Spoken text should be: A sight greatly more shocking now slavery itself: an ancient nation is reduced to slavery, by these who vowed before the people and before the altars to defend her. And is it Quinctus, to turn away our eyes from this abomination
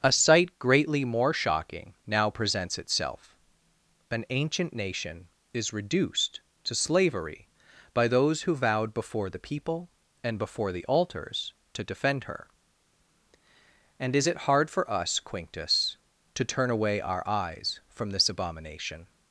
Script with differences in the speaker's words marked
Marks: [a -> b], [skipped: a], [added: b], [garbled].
A sight greatly more shocking now [slavery -> presents] itself: an ancient nation is reduced to slavery, by [these -> those] who vowed before the people and before the altars to defend her. And is it [added: hard for us] Quinctus, to turn away our eyes from this abomination